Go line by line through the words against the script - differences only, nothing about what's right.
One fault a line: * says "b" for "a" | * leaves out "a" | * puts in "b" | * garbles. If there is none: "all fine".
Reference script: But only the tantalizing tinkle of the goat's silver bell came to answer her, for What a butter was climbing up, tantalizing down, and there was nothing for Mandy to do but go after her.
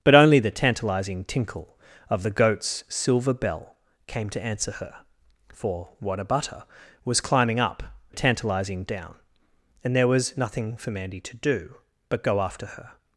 all fine